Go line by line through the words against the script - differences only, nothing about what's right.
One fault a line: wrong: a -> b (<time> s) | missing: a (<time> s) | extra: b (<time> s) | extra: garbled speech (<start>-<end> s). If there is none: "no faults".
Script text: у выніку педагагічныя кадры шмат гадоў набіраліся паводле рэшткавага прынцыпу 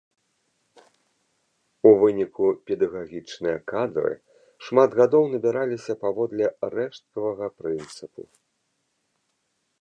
no faults